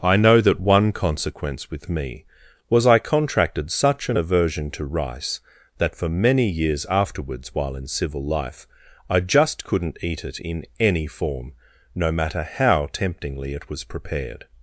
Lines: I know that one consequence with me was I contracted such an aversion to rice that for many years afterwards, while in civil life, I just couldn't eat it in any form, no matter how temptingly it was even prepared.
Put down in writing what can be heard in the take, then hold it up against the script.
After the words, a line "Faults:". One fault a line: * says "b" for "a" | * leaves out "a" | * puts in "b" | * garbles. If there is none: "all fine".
I know that one consequence with me was I contracted such an aversion to rice that for many years afterwards, while in civil life, I just couldn't eat it in any form, no matter how temptingly it was prepared.
Faults:
* leaves out "even"